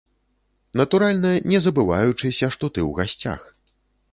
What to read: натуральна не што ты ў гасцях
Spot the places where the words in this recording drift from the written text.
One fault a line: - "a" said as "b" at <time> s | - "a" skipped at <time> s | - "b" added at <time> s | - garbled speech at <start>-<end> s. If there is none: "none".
- "забываючыся" added at 1.6 s